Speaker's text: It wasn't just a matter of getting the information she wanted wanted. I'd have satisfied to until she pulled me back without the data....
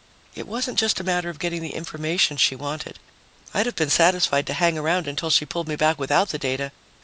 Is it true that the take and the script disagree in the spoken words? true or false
true